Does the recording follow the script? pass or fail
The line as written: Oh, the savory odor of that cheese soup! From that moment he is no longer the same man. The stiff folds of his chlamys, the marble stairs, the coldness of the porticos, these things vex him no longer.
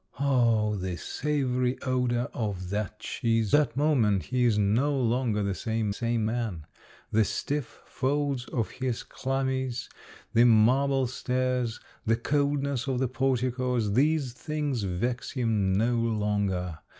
fail